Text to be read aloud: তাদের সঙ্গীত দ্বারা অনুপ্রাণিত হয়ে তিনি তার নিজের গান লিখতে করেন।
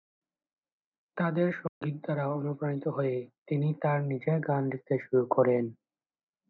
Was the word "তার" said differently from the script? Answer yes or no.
no